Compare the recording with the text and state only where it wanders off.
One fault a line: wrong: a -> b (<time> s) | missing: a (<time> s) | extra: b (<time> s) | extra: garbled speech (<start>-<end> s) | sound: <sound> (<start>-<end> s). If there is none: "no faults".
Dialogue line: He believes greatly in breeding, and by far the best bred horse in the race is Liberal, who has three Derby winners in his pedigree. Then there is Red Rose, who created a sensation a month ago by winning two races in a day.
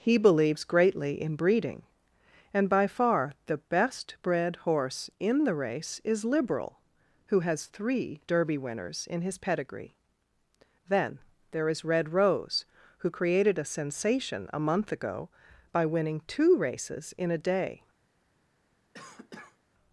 sound: cough (18.9-19.6 s)